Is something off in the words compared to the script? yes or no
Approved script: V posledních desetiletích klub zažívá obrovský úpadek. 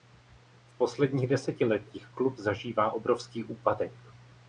no